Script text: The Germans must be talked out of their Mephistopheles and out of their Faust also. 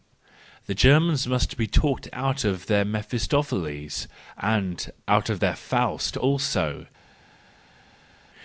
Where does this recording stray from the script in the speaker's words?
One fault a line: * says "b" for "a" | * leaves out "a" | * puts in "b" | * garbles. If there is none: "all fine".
all fine